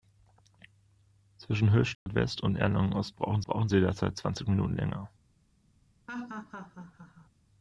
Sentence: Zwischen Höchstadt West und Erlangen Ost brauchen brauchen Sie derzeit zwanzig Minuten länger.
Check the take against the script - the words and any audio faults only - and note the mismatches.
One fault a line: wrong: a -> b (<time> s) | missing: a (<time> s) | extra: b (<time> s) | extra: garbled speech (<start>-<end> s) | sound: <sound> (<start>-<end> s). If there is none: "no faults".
sound: dropout (1.9-2.1 s)
sound: laugh (6.1-7.3 s)